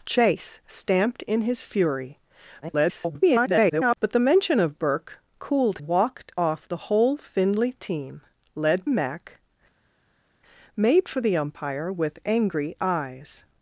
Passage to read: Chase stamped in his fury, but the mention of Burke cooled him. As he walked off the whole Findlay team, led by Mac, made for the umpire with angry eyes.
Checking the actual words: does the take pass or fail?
fail